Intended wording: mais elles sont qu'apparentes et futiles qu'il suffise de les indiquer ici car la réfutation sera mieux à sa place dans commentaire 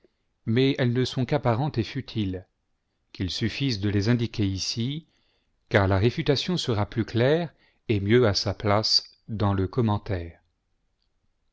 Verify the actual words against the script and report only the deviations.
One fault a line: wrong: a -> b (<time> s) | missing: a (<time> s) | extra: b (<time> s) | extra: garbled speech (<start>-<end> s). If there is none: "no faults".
extra: ne (0.9 s)
extra: plus claire et (6.8 s)
extra: le (9.5 s)